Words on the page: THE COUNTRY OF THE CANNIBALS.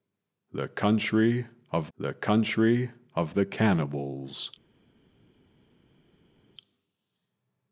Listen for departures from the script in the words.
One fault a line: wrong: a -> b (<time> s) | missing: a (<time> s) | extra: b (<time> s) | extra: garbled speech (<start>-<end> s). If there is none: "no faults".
extra: COUNTRY OF THE (2.1 s)